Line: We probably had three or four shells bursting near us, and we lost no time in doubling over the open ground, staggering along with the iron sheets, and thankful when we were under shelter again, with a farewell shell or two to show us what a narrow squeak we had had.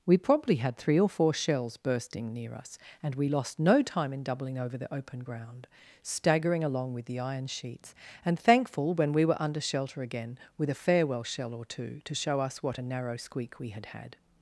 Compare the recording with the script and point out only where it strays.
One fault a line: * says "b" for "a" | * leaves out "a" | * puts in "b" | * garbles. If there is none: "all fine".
all fine